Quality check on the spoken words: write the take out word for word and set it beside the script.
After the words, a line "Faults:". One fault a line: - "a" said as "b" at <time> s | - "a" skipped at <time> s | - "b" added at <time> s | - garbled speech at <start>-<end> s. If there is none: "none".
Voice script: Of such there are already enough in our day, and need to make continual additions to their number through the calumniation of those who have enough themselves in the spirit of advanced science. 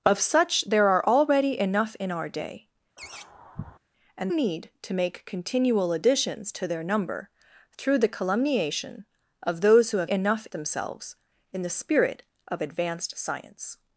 Of such there are already enough in our day, and need to make continual additions to their number through the calumniation of those who have enough themselves in the spirit of advanced science.
Faults:
none